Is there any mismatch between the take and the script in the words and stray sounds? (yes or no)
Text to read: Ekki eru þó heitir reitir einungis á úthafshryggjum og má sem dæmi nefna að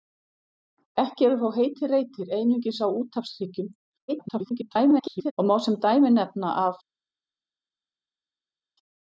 yes